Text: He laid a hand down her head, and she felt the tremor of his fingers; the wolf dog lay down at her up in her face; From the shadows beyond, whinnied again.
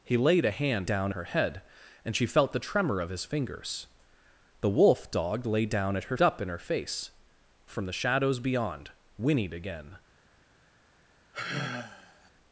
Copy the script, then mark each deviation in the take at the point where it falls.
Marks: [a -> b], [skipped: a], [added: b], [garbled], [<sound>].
He laid a hand down her head, and she felt the tremor of his fingers; the wolf dog lay down at her up in her face; From the shadows beyond, whinnied again. [sigh]